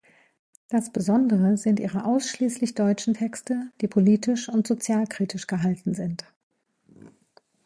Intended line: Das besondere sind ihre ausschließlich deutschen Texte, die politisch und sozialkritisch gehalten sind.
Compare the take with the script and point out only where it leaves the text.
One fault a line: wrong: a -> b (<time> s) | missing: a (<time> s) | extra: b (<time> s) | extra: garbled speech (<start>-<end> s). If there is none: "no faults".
no faults